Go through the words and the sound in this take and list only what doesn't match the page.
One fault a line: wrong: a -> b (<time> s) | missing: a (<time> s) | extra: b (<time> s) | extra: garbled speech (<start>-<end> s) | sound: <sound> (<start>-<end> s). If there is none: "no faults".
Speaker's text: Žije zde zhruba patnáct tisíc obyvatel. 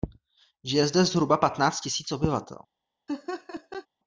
sound: laugh (3.1-3.9 s)